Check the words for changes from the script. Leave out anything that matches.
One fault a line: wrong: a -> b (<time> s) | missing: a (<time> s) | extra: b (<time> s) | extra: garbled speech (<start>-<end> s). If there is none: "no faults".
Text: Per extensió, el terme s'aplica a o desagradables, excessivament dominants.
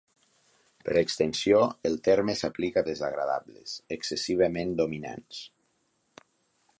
no faults